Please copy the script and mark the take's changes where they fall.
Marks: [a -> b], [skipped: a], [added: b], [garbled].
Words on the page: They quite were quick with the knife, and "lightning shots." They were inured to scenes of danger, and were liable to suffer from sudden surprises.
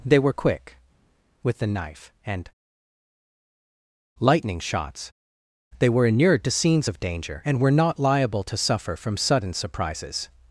They [skipped: quite] were quick with the knife, and "lightning shots." They were inured to scenes of danger, and were [added: not] liable to suffer from sudden surprises.